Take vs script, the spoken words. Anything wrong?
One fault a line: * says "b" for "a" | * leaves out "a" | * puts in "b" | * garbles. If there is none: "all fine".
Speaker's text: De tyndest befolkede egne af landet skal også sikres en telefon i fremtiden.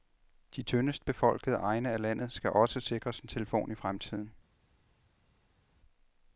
all fine